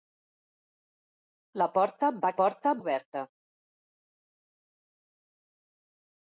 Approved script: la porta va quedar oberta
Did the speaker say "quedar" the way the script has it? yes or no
no